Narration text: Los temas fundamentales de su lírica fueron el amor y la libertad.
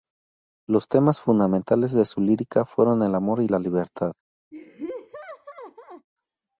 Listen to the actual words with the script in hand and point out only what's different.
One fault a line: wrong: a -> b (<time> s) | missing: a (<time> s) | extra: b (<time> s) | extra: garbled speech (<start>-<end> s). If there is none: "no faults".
no faults